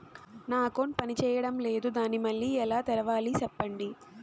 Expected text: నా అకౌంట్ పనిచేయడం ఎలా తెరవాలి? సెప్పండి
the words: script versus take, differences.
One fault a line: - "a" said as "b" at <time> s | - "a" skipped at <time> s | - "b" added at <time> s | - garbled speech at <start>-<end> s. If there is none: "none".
- "లేదు దాన్ని మళ్ళీ" added at 1.6 s